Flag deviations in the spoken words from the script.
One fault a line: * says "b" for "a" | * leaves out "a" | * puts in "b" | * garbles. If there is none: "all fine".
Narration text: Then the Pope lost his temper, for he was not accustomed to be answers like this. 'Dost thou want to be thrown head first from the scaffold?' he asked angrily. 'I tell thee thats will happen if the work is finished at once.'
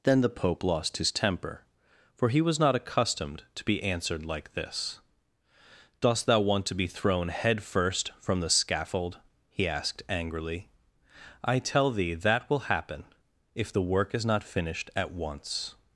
* says "answered" for "answers"
* says "that" for "thats"
* puts in "not"